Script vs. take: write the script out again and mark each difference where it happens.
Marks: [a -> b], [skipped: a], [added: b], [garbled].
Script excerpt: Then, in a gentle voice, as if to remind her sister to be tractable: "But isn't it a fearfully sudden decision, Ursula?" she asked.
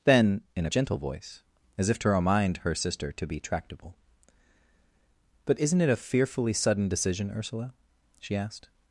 Then, in a gentle voice, as if to remind her sister to be tractable: "But isn't it a fearfully sudden decision, Ursula?" she asked.